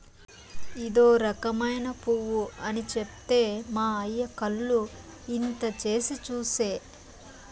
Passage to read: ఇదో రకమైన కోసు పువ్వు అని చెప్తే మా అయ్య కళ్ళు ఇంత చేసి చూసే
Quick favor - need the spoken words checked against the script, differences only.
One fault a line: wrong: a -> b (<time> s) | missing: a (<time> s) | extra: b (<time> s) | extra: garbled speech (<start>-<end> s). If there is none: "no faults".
missing: కోసు (1.9 s)